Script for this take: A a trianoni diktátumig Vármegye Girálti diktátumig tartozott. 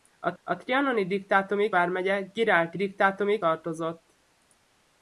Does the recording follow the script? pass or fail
pass